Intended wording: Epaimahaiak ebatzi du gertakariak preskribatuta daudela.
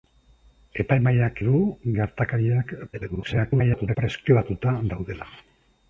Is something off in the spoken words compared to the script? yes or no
yes